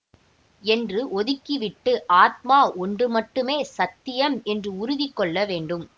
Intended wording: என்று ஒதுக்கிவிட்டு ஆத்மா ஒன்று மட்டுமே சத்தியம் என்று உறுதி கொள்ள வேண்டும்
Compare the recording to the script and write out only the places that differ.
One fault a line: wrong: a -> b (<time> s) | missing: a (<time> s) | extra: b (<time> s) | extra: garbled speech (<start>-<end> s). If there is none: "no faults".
no faults